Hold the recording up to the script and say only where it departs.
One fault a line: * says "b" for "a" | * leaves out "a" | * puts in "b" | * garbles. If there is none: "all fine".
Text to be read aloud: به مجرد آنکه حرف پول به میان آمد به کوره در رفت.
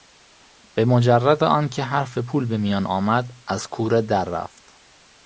* says "از" for "به"